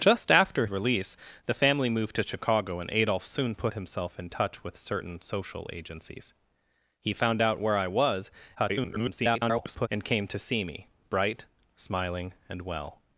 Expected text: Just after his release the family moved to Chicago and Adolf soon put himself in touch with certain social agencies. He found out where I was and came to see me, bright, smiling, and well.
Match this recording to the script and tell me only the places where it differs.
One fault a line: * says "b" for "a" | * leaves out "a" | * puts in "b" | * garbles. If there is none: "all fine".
* leaves out "his"
* garbles